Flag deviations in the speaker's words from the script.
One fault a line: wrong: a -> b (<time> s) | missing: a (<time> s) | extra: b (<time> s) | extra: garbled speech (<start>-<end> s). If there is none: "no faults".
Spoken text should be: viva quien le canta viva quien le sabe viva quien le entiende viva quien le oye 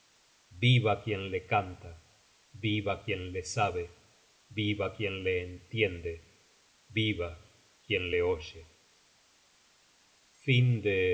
no faults